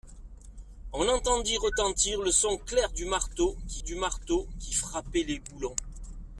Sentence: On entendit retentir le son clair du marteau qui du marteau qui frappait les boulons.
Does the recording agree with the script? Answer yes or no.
yes